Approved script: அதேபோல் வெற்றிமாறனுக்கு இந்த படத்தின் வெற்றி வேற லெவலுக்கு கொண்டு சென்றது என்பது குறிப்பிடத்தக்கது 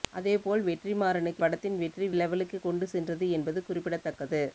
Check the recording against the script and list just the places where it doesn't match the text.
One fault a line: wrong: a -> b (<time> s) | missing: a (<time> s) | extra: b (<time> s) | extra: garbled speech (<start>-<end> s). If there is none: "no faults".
missing: இந்த (1.4 s)
missing: வேற (2.1 s)